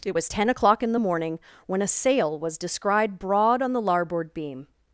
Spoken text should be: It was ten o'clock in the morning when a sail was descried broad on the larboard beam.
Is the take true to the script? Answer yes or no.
yes